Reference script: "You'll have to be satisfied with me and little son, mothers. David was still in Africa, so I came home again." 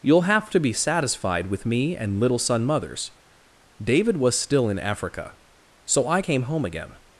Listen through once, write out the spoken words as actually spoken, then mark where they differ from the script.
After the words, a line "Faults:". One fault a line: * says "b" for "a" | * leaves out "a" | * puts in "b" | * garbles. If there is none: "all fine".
"You'll have to be satisfied with me and little son, mothers. David was still in Africa, so I came home again."
Faults:
all fine